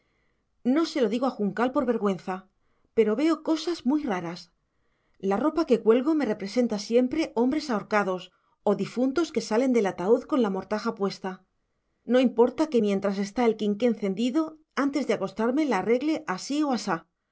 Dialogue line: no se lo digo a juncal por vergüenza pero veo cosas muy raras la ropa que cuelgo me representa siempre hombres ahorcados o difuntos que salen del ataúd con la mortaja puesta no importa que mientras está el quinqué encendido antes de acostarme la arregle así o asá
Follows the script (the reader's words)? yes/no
yes